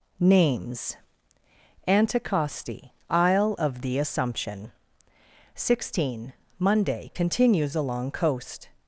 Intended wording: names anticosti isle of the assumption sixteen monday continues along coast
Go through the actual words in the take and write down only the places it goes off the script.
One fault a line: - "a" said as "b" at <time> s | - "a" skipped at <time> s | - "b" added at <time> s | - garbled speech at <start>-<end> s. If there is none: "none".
none